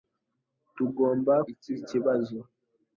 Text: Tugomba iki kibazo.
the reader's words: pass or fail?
pass